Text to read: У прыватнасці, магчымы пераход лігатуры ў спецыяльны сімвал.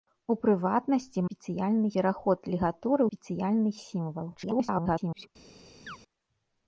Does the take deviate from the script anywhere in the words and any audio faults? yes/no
yes